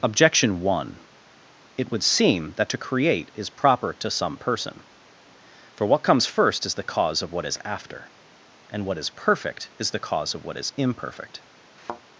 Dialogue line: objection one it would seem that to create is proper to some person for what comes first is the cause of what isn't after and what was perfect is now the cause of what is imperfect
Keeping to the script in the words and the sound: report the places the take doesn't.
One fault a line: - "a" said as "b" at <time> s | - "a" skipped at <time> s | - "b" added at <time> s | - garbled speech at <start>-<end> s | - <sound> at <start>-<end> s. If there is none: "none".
- "isn't" said as "is" at 7.5 s
- "was" said as "is" at 9.0 s
- "now" skipped at 9.9 s
- thud at 11.8-12.0 s